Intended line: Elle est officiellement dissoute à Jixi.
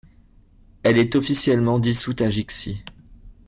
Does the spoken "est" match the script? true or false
true